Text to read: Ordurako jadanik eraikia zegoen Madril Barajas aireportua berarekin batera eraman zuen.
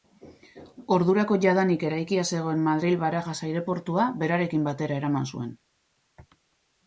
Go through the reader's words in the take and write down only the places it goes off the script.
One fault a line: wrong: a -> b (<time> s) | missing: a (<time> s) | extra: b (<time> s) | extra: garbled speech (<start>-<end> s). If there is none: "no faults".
no faults